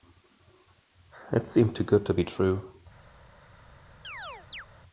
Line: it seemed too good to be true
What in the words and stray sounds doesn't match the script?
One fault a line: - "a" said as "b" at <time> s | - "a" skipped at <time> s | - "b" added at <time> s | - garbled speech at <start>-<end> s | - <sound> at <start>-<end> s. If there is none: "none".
- chirp at 4.0-4.7 s